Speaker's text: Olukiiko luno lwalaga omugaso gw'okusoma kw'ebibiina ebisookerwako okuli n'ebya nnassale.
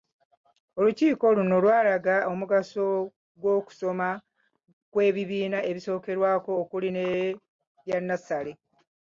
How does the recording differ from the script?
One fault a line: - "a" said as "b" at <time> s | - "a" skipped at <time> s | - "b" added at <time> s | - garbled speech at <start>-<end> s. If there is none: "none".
none